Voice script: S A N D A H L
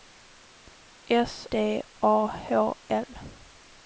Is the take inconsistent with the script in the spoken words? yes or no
yes